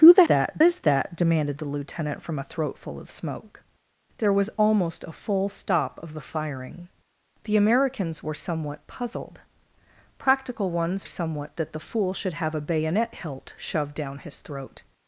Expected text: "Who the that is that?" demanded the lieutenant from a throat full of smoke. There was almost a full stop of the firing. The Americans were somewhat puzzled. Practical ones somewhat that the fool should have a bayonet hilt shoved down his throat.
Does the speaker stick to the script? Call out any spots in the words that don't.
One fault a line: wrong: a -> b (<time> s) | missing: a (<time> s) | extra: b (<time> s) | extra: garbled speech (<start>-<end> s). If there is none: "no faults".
no faults